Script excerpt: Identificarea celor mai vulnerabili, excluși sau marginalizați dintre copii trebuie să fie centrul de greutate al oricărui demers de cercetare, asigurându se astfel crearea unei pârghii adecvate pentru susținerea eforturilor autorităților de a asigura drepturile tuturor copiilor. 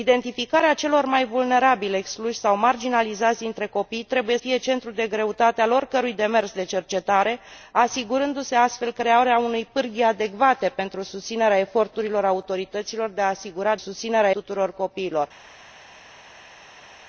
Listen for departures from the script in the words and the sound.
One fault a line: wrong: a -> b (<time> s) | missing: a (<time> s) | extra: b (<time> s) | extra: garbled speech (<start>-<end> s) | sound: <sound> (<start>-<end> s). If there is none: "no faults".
missing: să (4.4 s)
wrong: drepturile -> susținerea (13.7 s)